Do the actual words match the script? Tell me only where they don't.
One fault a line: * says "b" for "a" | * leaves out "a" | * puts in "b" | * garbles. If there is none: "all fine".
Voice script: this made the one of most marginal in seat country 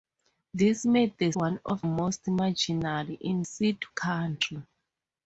all fine